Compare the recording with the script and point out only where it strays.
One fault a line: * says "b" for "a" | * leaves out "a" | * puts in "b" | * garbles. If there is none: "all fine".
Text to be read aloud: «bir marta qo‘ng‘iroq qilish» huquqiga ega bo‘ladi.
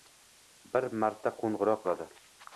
* leaves out "qilish huquqiga ega"